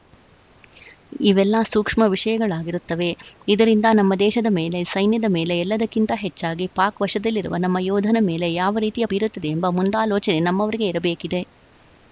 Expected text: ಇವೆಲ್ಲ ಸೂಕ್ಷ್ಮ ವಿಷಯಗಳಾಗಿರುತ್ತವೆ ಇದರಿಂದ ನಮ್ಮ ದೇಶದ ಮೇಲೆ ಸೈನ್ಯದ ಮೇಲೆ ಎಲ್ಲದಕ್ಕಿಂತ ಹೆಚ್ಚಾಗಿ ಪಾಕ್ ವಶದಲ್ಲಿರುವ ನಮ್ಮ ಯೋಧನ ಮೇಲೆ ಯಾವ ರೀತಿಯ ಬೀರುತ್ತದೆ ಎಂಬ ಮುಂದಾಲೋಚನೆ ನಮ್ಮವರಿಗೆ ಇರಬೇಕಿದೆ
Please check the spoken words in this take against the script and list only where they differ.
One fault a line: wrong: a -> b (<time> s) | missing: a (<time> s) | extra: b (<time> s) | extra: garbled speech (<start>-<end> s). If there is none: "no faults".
no faults